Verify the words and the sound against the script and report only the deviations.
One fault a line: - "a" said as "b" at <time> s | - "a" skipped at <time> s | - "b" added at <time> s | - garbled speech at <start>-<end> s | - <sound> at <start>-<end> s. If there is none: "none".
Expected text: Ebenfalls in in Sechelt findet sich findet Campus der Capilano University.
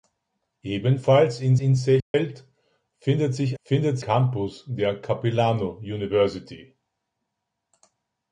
- dropout at 2.0-2.1 s